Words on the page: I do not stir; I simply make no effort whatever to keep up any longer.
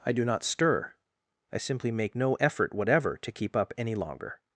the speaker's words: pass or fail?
pass